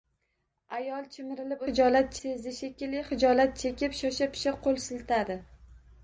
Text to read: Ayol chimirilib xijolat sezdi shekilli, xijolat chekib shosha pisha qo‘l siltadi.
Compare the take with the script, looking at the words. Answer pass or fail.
pass